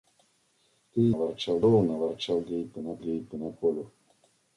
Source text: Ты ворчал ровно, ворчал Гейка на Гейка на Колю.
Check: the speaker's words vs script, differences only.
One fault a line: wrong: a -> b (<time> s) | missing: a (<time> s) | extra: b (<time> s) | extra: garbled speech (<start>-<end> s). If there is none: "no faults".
no faults